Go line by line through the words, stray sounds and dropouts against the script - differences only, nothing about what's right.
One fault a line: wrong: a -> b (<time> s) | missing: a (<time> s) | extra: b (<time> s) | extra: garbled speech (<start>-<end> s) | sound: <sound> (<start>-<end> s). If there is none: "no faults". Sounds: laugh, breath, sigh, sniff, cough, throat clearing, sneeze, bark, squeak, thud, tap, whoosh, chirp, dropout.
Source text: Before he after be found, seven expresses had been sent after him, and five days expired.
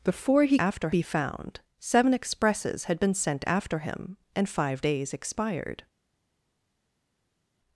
no faults